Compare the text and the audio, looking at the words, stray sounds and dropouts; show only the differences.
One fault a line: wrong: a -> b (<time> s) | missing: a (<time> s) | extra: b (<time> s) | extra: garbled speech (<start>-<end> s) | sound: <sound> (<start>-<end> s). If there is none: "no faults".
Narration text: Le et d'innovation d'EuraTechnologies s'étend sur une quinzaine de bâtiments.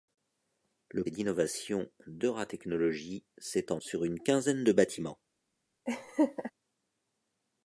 sound: laugh (5.9-6.5 s)